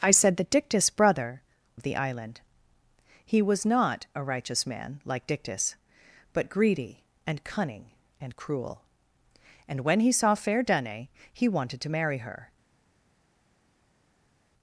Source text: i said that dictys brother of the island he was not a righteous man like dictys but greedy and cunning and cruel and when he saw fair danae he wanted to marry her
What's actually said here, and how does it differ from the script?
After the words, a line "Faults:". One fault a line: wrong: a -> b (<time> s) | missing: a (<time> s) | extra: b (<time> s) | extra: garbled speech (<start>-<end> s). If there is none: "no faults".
i said that dictys brother of the island he was not a righteous man like dictys but greedy and cunning and cruel and when he saw fair danae he wanted to marry her
Faults:
no faults